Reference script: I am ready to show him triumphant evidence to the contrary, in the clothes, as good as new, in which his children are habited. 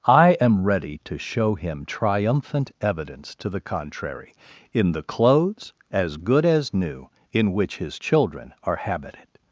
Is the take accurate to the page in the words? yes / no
yes